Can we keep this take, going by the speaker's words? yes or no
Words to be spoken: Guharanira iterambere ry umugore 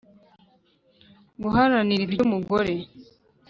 no